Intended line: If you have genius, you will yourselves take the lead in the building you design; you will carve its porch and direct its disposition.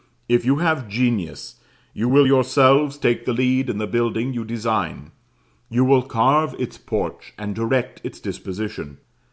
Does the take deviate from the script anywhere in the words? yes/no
no